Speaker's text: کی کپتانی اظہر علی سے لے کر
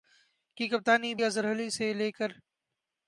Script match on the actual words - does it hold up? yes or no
yes